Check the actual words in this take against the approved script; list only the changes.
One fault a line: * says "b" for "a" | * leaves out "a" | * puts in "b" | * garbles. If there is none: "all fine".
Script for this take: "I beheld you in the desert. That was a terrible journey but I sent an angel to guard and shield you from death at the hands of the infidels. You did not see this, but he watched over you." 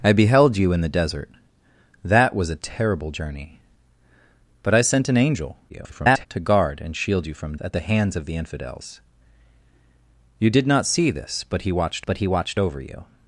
* garbles
* leaves out "death"
* puts in "but he watched"